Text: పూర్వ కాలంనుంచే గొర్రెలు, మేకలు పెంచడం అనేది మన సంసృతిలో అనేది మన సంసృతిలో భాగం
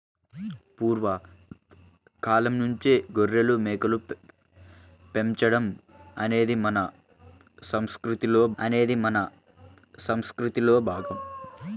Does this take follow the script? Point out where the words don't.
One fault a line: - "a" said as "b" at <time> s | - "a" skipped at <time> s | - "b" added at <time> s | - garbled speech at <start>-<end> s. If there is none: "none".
none